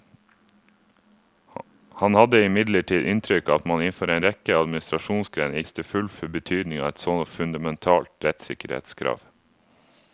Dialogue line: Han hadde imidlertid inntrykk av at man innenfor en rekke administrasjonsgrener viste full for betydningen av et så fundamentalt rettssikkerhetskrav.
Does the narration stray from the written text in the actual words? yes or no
no